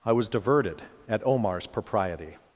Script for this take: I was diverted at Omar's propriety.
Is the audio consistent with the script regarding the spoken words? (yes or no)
yes